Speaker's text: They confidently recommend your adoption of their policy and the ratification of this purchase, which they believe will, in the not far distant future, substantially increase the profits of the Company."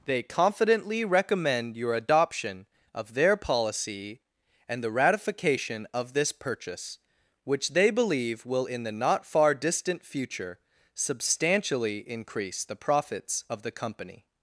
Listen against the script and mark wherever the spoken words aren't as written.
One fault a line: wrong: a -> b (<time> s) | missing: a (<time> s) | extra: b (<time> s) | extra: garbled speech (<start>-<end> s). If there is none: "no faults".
no faults